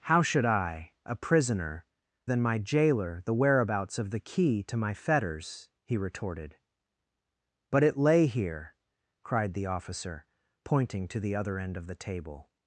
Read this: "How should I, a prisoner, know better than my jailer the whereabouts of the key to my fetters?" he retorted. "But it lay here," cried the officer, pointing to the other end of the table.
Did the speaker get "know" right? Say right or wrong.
wrong